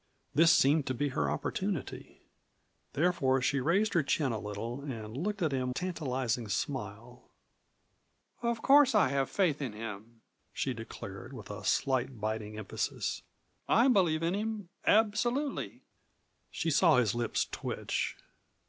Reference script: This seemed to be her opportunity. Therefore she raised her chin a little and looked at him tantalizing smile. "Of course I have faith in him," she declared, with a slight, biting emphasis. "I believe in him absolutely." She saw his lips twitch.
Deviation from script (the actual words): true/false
false